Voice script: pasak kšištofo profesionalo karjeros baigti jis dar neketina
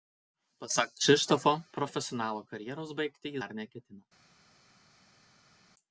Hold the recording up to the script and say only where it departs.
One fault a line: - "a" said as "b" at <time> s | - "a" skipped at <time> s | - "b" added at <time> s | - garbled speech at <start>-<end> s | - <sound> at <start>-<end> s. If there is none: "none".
- "jis" skipped at 3.4 s